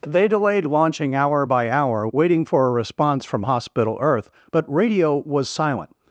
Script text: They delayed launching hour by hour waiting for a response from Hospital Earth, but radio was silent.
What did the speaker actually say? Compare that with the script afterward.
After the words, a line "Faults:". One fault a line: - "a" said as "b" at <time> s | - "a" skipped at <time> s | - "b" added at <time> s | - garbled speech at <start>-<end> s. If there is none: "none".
They delayed launching hour by hour waiting for a response from Hospital Earth, but radio was silent.
Faults:
none